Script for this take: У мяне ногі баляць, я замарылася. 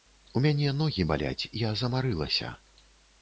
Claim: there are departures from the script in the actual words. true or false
false